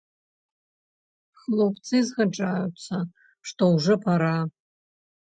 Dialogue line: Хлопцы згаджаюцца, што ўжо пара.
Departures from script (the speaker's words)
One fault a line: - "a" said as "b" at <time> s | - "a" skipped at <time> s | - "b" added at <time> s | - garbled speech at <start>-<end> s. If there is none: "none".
none